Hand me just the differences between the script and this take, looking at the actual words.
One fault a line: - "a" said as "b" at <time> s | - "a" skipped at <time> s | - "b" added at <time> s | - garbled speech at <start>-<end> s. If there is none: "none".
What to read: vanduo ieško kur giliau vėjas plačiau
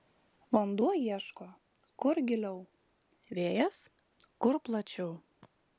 - "kur" added at 4.5 s